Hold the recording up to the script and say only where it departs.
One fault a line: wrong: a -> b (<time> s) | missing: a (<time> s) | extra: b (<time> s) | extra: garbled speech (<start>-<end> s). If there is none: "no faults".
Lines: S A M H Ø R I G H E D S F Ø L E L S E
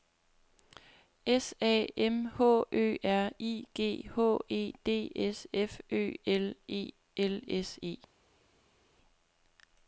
no faults